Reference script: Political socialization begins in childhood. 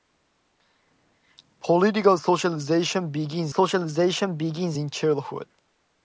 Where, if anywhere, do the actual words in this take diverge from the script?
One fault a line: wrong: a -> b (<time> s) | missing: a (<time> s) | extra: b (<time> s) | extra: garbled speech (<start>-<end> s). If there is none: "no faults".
extra: socialization begins (3.5 s)